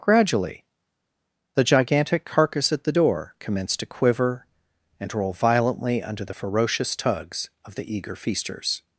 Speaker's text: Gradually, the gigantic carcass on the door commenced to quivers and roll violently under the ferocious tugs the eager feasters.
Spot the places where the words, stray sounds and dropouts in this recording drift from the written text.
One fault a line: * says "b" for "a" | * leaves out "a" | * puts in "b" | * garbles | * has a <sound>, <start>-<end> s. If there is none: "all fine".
* says "at" for "on"
* says "quiver" for "quivers"
* puts in "of"